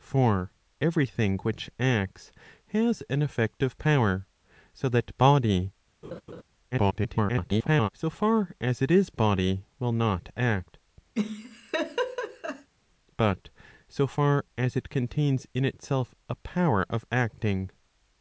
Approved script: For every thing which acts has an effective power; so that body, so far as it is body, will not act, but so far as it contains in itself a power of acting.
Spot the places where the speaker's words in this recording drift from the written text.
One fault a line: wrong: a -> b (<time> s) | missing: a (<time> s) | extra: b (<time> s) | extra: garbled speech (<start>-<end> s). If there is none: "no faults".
extra: garbled speech (6.7-7.9 s)